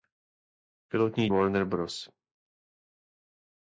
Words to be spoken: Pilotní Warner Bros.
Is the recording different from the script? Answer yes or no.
no